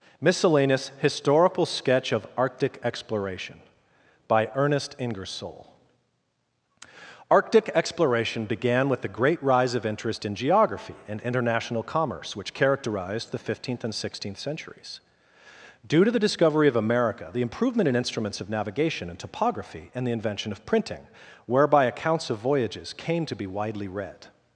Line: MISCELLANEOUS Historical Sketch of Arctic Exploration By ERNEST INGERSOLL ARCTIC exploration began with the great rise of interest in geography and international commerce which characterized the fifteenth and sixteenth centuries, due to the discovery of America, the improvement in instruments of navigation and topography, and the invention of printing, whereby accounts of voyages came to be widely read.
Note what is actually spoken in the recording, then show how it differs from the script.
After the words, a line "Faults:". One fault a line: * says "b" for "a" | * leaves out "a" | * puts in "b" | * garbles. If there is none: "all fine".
MISCELLANEOUS Historical Sketch of Arctic Exploration By ERNEST INGERSOLL ARCTIC exploration began with the great rise of interest in geography and international commerce which characterized the fifteenth and sixteenth centuries, due to the discovery of America, the improvement in instruments of navigation and topography, and the invention of printing, whereby accounts of voyages came to be widely read.
Faults:
all fine